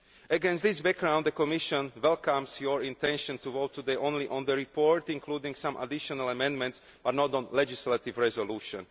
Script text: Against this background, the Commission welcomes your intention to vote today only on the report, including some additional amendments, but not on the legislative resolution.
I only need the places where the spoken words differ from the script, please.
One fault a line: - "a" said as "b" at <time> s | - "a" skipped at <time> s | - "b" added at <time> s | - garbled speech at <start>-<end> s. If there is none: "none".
none